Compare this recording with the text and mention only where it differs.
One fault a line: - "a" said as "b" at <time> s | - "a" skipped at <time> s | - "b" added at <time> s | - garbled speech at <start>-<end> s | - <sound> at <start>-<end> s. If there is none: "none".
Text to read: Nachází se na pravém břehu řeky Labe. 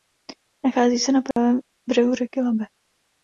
- dropout at 1.3-1.4 s